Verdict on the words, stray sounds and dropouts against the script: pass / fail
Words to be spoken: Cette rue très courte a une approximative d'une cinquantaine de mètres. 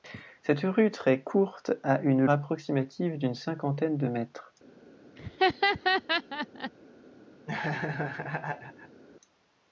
fail